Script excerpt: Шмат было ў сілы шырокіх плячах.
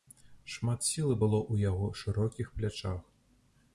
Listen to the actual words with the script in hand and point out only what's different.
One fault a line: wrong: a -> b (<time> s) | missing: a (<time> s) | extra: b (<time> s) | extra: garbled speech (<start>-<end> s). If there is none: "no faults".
extra: сілы (0.9 s)
wrong: сілы -> яго (1.7 s)